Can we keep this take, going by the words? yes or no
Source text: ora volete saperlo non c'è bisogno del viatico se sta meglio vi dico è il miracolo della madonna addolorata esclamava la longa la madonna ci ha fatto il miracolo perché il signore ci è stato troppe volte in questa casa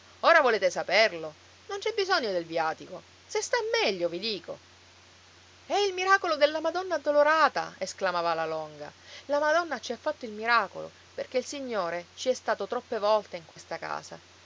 yes